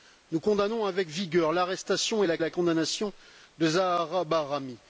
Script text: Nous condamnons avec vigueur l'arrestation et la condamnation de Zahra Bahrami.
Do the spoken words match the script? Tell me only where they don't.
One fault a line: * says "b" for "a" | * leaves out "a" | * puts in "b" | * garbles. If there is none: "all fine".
* puts in "la"